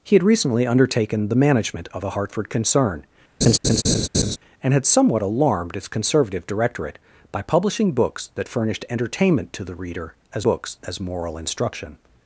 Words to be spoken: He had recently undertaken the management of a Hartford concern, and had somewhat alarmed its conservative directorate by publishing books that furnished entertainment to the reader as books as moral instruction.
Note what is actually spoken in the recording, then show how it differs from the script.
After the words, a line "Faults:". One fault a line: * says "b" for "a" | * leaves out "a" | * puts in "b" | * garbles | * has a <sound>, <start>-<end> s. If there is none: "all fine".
He had recently undertaken the management of a Hartford concern, and had somewhat alarmed its conservative directorate by publishing books that furnished entertainment to the reader as books as moral instruction.
Faults:
* has a laugh, 3.4-4.4 s